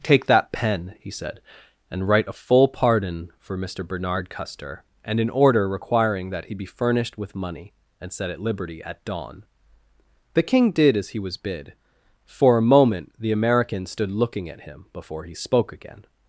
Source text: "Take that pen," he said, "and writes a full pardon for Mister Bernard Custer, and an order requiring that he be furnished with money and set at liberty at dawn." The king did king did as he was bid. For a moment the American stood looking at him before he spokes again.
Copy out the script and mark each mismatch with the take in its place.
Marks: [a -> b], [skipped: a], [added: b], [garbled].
"Take that pen," he said, "and [writes -> write] a full pardon for Mister Bernard Custer, and an order requiring that he be furnished with money and set at liberty at dawn." The king did [skipped: king did] as he was bid. For a moment the American stood looking at him before he [spokes -> spoke] again.